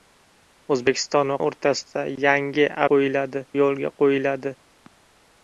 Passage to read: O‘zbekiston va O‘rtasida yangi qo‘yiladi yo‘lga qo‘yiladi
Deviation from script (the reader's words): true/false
false